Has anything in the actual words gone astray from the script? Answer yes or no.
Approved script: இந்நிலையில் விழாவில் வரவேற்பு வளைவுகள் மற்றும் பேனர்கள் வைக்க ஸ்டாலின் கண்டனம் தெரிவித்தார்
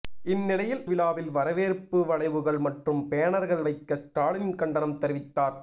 no